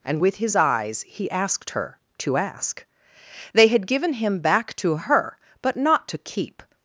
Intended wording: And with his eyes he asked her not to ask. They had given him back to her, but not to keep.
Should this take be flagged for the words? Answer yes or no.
yes